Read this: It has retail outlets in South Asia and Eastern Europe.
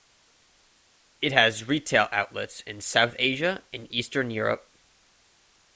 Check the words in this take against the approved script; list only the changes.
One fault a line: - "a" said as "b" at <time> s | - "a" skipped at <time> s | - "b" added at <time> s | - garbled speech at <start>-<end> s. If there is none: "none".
none